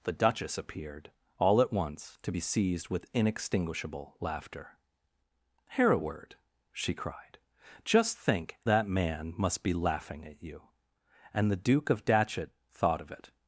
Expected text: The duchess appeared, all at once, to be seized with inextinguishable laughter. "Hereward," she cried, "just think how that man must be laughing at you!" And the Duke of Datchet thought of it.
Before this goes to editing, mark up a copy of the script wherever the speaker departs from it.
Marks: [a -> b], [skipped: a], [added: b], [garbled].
The duchess appeared, all at once, to be seized with inextinguishable laughter. "Hereward," she cried, "just think [skipped: how] that man must be laughing at you!" And the Duke of Datchet thought of it.